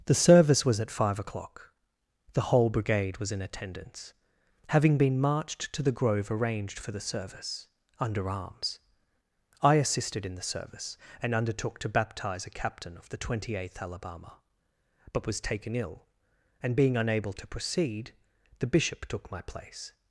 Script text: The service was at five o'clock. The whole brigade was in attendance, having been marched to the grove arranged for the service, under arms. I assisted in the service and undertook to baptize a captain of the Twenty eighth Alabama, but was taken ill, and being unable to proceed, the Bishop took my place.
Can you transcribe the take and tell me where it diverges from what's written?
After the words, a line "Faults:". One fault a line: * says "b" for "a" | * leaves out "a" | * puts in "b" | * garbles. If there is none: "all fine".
The service was at five o'clock. The whole brigade was in attendance, having been marched to the grove arranged for the service, under arms. I assisted in the service and undertook to baptize a captain of the Twenty eighth Alabama, but was taken ill, and being unable to proceed, the Bishop took my place.
Faults:
all fine